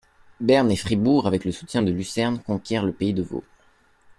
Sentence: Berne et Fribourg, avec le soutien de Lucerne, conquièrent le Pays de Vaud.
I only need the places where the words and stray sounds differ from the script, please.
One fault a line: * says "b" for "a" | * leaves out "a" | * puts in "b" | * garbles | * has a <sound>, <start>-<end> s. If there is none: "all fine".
all fine